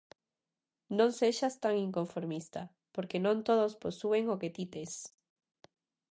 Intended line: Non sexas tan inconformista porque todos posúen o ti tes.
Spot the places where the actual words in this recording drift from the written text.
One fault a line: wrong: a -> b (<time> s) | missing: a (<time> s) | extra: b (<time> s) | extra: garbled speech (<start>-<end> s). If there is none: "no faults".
extra: non (3.2 s)
extra: que (4.4 s)